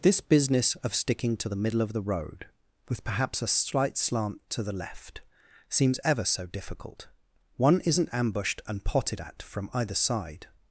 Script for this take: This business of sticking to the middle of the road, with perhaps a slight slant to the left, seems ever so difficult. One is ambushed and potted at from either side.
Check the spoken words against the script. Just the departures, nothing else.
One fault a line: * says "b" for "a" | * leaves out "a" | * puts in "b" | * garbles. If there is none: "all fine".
* says "isn't" for "is"